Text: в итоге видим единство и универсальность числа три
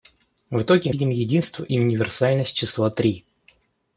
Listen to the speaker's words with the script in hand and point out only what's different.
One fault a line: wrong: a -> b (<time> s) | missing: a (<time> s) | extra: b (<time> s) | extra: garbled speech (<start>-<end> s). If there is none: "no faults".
no faults